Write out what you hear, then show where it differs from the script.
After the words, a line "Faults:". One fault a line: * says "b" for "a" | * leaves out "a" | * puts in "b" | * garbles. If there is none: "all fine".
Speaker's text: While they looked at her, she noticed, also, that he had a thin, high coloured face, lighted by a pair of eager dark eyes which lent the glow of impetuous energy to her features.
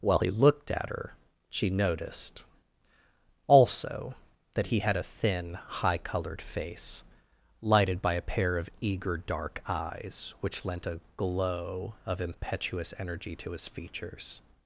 While he looked at her, she noticed, also, that he had a thin, high coloured face, lighted by a pair of eager dark eyes which lent a glow of impetuous energy to his features.
Faults:
* says "he" for "they"
* says "a" for "the"
* says "his" for "her"